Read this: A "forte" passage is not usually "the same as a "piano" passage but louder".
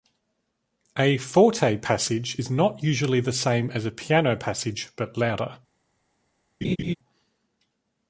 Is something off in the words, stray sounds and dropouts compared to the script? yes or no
yes